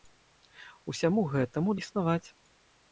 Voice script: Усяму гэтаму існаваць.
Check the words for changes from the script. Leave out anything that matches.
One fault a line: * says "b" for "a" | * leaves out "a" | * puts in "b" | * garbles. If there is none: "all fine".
all fine